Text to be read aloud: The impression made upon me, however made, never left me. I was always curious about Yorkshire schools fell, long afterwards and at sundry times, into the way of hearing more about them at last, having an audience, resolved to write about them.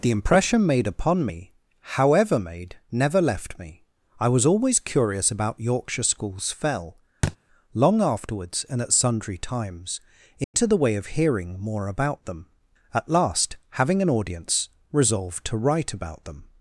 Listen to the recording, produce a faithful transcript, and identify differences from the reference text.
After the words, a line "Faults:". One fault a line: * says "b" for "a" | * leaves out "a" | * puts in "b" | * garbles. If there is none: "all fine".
The impression made upon me, however made, never left me. I was always curious about Yorkshire schools fell, long afterwards and at sundry times, into the way of hearing more about them at last, having an audience, resolved to write about them.
Faults:
all fine